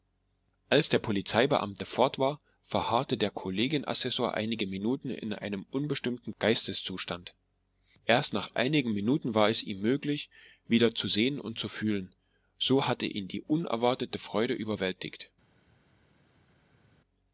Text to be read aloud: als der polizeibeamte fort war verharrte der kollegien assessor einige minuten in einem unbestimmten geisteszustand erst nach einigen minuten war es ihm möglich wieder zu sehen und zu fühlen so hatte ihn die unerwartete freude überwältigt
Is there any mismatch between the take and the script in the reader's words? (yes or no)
no